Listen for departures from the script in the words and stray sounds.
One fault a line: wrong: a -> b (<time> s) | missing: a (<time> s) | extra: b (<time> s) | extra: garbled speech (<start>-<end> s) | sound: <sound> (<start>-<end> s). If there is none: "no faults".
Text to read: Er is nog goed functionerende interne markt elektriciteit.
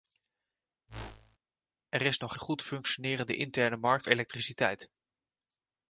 sound: whoosh (0.9-1.4 s)